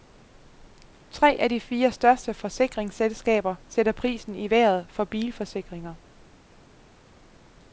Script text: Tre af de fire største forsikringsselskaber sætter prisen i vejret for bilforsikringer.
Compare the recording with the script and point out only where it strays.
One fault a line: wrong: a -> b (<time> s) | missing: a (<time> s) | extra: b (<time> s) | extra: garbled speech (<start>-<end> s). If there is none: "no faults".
no faults